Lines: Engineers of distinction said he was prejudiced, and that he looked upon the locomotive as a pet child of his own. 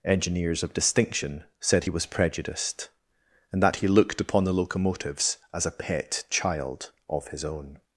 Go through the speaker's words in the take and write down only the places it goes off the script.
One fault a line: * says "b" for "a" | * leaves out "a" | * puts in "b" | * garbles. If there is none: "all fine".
* says "locomotives" for "locomotive"